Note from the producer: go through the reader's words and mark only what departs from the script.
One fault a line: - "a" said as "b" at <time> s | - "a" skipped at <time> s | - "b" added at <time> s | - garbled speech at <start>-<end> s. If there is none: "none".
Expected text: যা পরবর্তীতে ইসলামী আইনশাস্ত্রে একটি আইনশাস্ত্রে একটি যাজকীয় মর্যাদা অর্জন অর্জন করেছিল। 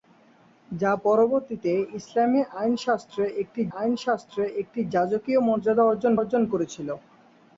none